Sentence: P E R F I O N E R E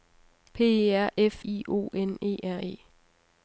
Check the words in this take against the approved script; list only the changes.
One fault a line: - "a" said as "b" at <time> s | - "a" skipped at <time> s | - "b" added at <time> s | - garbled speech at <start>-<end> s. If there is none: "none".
none